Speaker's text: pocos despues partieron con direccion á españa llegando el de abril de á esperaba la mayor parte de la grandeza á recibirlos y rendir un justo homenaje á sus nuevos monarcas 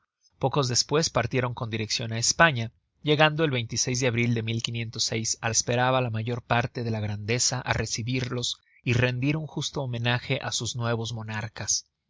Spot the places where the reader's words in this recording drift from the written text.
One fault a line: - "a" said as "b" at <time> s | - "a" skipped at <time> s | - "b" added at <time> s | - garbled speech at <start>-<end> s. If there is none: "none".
none